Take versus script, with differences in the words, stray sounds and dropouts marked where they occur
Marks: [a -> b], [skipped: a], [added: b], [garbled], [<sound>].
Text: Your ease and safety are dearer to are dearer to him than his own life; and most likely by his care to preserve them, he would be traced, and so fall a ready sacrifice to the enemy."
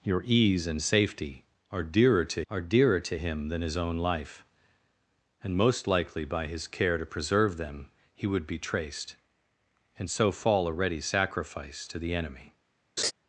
Your ease and safety are dearer to are dearer to him than his own life; and most likely by his care to preserve them, he would be traced, and so fall a ready sacrifice to the enemy." [laugh]